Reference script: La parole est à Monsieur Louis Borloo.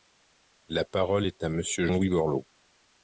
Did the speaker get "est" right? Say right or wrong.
right